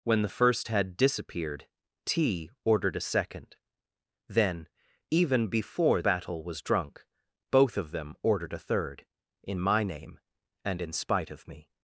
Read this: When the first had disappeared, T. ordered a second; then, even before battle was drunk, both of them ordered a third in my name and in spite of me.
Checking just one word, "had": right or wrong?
right